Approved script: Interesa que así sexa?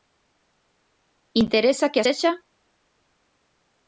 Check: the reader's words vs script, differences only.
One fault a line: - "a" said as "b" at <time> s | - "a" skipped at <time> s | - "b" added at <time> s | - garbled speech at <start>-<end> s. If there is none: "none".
- "así" skipped at 2.0 s